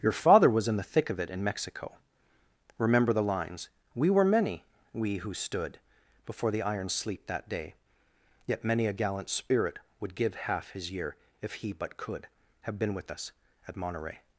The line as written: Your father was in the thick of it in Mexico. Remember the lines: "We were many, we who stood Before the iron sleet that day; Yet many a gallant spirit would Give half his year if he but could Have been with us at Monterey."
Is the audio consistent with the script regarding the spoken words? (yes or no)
yes